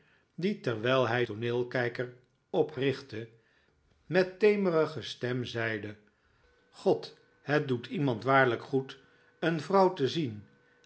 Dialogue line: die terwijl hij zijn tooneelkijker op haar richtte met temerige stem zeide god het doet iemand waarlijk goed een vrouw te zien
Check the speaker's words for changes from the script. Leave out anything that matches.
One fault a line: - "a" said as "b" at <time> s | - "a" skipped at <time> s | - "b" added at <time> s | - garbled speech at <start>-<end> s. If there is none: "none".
- "zijn" skipped at 1.2 s
- "haar" skipped at 2.8 s